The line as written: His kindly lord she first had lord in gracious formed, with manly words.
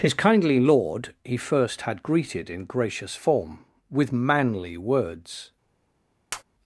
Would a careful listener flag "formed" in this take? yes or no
yes